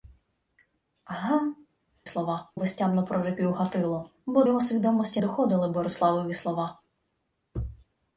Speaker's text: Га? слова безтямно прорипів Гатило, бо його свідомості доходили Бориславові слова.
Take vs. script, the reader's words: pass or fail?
pass